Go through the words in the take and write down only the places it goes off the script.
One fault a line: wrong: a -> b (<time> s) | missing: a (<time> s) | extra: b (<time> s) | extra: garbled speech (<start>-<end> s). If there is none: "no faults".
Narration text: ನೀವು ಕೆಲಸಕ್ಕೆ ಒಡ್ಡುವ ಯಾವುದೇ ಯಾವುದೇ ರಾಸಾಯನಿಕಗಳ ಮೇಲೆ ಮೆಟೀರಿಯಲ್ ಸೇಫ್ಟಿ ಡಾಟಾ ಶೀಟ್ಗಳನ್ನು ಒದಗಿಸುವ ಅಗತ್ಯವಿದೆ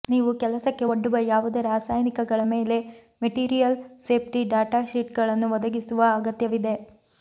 missing: ಯಾವುದೇ (1.6 s)